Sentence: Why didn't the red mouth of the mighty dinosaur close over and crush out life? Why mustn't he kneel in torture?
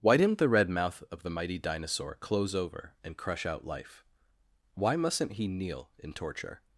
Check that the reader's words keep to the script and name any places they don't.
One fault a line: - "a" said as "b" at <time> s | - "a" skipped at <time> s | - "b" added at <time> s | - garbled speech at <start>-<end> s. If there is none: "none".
none